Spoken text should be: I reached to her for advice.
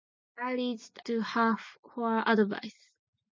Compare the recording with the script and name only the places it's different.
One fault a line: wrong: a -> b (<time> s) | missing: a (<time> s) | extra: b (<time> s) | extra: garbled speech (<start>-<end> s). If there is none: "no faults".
no faults